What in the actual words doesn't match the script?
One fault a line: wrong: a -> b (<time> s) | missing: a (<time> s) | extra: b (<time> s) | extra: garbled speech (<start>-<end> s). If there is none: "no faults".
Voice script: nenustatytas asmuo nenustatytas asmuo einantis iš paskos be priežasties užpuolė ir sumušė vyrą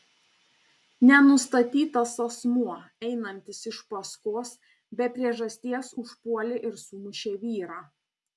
missing: nenustatytas asmuo (2.8 s)